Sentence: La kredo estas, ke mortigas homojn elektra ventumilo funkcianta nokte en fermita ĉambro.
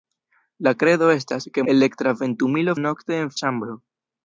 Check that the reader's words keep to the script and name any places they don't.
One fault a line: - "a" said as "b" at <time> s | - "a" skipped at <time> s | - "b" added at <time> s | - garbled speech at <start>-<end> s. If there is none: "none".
- "mortigas homojn" skipped at 1.6 s
- "funkcianta" skipped at 2.7 s
- "fermita" skipped at 3.3 s